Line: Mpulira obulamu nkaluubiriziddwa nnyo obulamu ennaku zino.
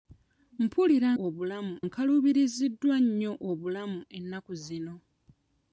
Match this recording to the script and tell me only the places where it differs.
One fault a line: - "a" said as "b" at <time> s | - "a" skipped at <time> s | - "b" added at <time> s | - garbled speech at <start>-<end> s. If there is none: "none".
none